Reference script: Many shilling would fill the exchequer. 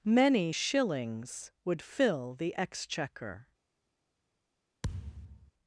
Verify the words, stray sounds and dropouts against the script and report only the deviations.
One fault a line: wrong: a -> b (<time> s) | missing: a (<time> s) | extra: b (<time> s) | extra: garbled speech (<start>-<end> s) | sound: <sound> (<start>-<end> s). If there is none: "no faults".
wrong: shilling -> shillings (0.5 s)
sound: thud (4.8-5.5 s)